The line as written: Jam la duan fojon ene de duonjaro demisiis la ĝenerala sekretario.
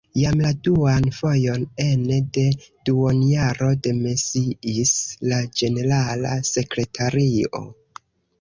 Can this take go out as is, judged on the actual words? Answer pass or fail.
pass